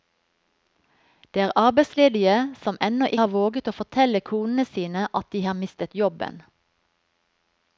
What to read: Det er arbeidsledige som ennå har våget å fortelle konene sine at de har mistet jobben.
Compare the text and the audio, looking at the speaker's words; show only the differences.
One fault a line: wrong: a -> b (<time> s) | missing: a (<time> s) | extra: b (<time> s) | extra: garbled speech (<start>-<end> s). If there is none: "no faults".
no faults